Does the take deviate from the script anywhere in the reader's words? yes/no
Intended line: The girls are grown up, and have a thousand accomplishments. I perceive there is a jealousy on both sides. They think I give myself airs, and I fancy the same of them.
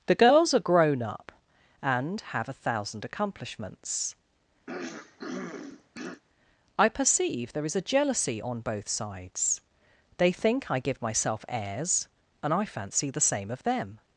no